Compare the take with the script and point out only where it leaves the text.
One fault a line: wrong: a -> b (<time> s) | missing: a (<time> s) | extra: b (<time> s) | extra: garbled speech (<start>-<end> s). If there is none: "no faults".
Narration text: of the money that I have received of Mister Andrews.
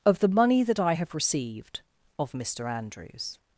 no faults